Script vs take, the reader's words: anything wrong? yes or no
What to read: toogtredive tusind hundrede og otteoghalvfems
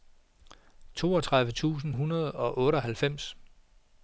no